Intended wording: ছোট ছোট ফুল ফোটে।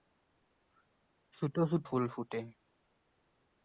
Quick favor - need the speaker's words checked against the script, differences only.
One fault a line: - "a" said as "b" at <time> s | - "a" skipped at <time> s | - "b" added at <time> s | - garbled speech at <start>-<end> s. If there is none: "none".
none